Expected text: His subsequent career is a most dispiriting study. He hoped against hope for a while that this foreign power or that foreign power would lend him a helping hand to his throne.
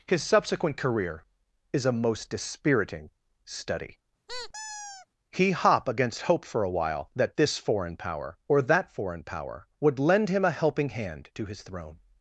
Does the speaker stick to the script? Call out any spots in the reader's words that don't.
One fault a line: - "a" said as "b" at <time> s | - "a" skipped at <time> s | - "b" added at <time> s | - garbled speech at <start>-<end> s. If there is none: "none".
- "hoped" said as "hop" at 5.5 s